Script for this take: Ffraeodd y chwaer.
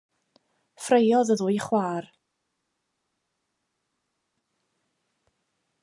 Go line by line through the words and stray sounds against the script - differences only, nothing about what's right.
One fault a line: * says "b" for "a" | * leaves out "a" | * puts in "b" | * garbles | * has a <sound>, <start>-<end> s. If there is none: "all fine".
* puts in "ddwy"